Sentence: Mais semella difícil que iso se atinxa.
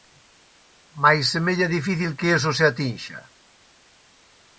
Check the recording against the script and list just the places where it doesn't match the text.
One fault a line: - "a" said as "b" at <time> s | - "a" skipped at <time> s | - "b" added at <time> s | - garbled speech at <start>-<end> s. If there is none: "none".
none